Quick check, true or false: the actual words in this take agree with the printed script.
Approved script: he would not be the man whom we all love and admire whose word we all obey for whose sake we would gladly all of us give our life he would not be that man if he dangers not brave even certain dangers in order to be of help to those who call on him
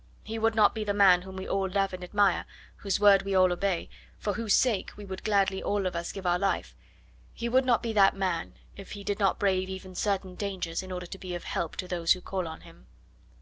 false